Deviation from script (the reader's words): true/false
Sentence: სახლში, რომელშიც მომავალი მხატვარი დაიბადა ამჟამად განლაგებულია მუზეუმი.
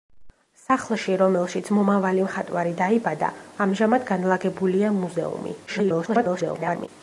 true